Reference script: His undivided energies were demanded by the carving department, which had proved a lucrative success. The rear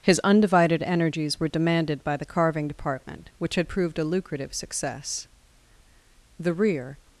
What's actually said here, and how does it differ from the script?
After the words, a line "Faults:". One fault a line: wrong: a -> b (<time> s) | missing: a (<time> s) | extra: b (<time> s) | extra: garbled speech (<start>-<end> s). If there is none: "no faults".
His undivided energies were demanded by the carving department, which had proved a lucrative success. The rear
Faults:
no faults